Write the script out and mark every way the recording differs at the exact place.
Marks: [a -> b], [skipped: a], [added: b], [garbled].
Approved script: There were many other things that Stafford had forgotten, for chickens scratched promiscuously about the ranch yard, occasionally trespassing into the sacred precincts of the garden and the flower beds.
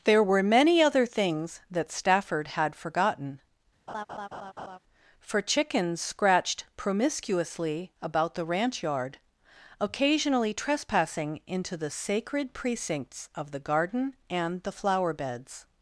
There were many other things that Stafford had forgotten, for chickens scratched promiscuously about the ranch yard, occasionally trespassing into the sacred precincts of the garden and the flower beds.